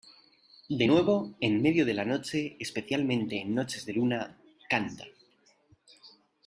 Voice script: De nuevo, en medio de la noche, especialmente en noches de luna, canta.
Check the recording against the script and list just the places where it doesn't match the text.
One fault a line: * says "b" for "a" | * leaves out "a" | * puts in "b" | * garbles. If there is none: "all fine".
all fine